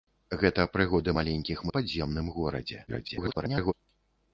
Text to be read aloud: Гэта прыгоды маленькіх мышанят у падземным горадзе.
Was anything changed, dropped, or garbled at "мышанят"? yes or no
yes